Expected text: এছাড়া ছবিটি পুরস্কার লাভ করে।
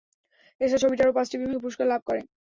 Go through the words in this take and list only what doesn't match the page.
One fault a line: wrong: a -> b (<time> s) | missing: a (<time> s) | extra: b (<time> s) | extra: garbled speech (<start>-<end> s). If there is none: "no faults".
extra: আরও পাঁচটি বিভাগে (1.0 s)